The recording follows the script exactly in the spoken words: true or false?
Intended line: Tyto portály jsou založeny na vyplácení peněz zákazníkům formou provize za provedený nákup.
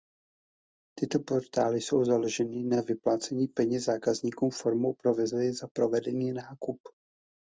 true